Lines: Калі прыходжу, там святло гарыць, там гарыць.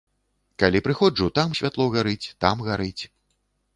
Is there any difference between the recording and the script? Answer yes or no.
no